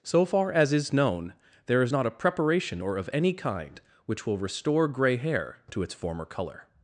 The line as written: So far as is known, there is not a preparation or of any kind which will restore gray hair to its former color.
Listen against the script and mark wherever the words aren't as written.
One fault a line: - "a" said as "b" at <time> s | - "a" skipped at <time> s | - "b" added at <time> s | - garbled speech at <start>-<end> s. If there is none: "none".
none